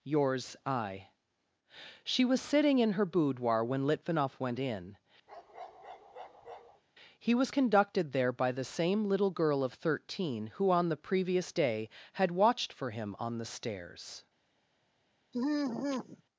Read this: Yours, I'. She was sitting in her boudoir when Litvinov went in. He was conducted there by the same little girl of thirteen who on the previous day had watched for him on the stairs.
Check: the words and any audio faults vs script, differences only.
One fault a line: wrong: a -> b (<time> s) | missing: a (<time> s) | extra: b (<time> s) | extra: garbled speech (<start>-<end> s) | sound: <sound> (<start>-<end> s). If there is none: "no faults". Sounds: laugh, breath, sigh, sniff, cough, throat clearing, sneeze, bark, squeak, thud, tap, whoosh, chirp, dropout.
sound: bark (5.3-6.8 s)
sound: sigh (15.3-16.2 s)